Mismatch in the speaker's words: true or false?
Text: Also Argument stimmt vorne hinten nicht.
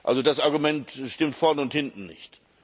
true